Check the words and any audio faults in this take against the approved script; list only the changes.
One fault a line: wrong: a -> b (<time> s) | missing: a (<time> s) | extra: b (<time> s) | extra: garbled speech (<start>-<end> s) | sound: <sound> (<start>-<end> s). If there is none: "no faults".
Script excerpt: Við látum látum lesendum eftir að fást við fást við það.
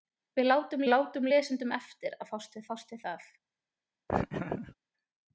sound: laugh (4.1-4.8 s)